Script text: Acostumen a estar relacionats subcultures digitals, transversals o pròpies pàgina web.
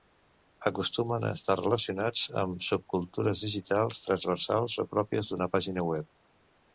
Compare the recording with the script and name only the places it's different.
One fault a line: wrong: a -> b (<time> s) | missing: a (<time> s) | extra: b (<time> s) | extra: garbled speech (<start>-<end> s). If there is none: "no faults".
extra: amb (2.4 s)
extra: d'una (5.3 s)